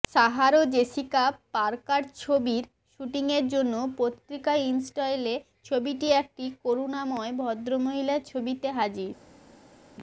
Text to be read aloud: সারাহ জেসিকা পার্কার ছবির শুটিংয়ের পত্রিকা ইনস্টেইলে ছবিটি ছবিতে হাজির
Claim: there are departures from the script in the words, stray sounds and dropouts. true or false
true